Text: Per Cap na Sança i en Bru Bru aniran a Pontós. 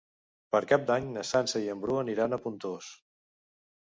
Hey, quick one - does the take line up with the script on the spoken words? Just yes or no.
no